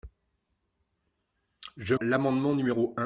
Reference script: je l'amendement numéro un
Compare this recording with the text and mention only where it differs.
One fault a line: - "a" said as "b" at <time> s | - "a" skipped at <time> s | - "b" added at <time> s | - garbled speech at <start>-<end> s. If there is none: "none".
none